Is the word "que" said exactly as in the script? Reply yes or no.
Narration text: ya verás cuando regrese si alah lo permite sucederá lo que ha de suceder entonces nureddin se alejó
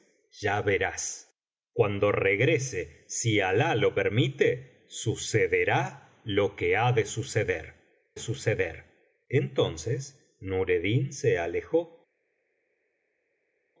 yes